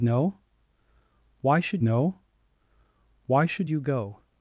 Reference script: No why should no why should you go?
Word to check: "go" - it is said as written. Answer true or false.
true